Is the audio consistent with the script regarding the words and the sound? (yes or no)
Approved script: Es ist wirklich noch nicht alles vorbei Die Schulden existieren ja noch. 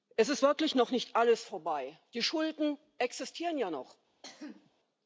no